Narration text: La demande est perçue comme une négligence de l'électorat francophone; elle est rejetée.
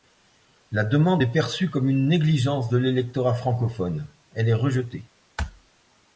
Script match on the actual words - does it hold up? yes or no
yes